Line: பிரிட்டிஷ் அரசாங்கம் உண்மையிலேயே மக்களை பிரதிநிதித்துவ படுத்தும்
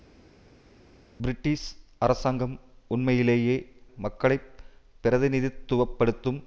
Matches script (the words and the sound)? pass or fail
pass